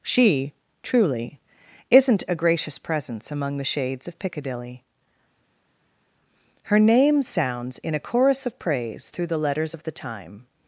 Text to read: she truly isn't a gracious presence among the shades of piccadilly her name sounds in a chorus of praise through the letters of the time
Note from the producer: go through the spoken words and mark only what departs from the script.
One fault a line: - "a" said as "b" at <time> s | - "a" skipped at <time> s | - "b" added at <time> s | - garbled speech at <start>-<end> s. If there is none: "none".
none